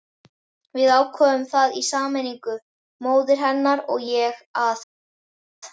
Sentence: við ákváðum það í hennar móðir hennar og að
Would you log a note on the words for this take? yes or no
yes